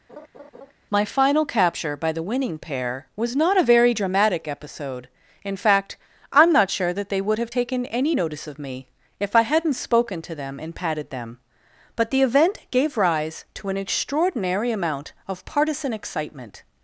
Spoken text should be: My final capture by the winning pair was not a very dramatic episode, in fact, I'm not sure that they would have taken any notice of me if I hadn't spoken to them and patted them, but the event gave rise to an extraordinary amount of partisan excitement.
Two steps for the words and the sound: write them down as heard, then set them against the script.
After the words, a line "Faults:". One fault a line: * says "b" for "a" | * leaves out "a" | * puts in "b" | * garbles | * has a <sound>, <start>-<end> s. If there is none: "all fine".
My final capture by the winning pair was not a very dramatic episode, in fact, I'm not sure that they would have taken any notice of me if I hadn't spoken to them and patted them, but the event gave rise to an extraordinary amount of partisan excitement.
Faults:
* has a laugh, 0.1-0.7 s